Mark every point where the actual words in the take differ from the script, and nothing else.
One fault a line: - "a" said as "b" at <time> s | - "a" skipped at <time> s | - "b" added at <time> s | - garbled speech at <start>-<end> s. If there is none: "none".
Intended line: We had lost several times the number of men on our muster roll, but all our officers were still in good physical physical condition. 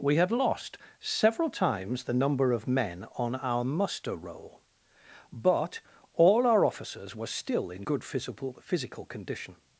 none